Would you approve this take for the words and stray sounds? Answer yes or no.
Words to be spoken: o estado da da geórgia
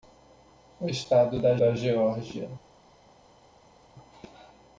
yes